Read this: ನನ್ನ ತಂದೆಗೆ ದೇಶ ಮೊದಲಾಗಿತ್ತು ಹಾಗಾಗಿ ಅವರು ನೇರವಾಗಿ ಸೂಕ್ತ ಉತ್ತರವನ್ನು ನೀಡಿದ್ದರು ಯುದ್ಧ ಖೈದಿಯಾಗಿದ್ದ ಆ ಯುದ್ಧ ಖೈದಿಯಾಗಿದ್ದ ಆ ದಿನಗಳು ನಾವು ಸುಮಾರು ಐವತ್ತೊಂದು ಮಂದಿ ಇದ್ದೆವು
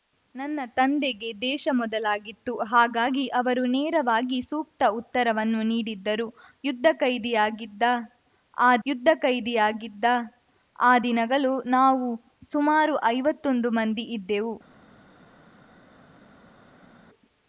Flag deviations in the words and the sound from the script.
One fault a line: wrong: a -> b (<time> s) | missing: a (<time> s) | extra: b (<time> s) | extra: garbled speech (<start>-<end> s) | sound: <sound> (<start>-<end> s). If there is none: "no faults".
no faults